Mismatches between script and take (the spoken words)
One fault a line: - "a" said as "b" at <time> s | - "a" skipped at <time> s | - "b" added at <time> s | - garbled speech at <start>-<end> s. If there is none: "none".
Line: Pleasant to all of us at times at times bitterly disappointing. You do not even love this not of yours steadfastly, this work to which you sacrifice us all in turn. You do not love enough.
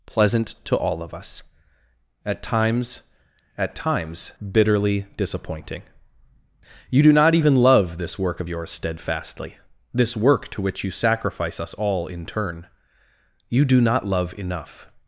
- "not" said as "work" at 8.2 s